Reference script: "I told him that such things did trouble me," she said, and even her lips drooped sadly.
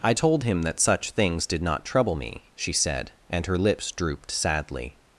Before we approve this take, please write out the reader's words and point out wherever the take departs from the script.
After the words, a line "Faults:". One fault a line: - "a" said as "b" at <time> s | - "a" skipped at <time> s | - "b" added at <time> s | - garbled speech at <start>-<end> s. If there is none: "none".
"I told him that such things did not trouble me," she said, and her lips drooped sadly.
Faults:
- "not" added at 1.6 s
- "even" skipped at 3.4 s